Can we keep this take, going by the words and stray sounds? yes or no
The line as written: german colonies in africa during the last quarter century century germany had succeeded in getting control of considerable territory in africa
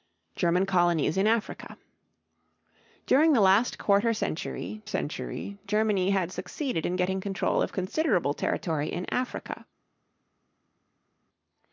yes